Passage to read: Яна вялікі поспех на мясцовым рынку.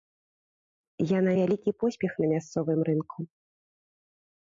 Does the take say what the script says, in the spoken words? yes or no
yes